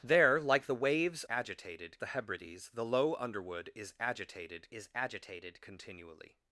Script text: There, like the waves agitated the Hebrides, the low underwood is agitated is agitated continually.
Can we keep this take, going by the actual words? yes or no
yes